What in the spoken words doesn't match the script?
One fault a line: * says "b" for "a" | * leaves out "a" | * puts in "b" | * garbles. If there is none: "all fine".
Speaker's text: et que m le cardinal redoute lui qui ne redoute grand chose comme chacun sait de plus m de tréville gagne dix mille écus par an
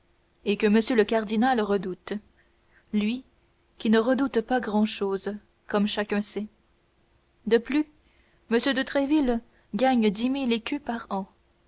* puts in "pas"